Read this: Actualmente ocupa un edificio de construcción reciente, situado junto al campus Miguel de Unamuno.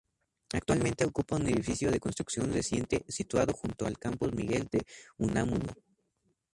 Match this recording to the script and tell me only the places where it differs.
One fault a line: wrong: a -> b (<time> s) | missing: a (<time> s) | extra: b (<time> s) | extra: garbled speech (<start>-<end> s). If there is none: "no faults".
no faults